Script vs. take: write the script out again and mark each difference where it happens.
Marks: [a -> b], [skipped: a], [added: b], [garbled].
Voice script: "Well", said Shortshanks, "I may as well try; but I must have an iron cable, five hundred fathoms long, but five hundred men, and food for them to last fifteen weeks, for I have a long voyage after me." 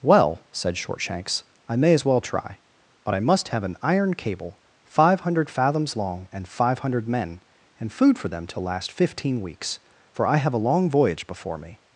"Well", said Shortshanks, "I may as well try; but I must have an iron cable, five hundred fathoms long, [but -> and] five hundred men, and food for them to last fifteen weeks, for I have a long voyage [after -> before] me."